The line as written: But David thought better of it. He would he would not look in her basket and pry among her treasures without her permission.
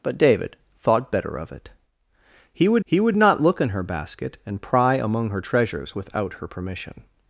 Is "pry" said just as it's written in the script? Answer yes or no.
yes